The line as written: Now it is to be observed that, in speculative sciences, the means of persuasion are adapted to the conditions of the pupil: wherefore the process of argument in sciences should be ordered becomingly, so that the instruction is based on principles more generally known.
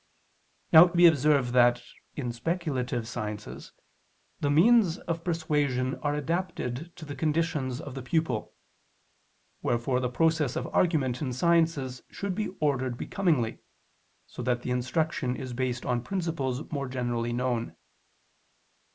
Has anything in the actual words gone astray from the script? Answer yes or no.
yes